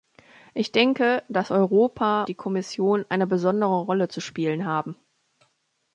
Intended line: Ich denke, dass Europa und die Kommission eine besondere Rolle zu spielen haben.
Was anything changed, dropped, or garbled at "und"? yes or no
yes